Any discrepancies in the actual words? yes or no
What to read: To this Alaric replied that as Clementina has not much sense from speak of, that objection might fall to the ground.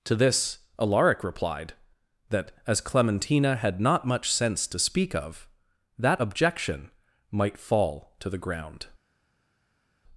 yes